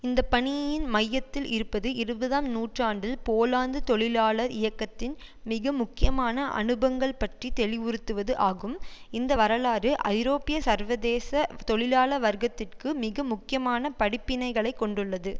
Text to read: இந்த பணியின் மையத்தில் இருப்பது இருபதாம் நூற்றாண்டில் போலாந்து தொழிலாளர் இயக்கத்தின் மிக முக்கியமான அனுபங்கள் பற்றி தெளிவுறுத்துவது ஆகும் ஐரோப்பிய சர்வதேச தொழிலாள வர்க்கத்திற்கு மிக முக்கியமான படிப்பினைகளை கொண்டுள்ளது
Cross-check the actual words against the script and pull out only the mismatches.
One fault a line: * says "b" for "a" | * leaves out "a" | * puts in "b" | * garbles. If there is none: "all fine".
* puts in "இந்த வரலாறு"